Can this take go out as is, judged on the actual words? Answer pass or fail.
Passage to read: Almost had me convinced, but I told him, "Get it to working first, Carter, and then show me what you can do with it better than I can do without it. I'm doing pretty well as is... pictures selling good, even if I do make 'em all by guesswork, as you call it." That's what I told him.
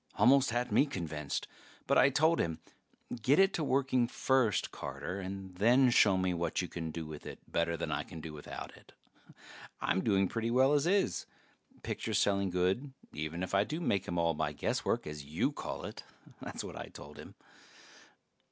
pass